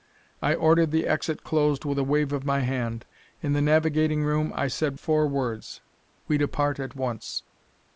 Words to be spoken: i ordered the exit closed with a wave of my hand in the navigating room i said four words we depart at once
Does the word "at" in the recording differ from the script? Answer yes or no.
no